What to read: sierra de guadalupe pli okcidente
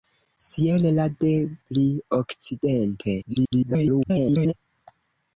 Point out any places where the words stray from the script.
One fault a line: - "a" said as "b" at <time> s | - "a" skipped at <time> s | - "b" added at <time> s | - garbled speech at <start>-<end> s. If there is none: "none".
- "guadalupe" skipped at 1.3 s
- garbled speech at 3.2-4.5 s